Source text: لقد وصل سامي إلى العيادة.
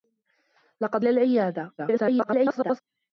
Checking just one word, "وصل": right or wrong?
wrong